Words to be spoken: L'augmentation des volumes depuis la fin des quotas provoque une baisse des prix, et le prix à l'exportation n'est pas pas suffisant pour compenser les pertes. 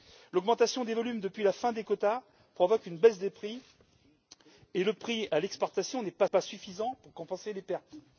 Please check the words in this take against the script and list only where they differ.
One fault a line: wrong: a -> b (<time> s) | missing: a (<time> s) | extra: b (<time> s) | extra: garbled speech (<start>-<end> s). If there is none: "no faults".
no faults